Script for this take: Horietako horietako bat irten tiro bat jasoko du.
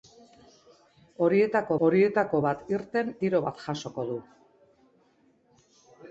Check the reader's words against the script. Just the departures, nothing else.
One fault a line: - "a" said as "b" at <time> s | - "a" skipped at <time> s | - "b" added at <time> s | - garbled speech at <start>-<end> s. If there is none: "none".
none